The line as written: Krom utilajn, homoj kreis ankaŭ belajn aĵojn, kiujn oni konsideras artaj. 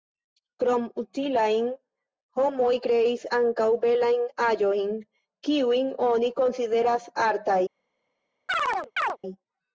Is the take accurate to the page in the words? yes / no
yes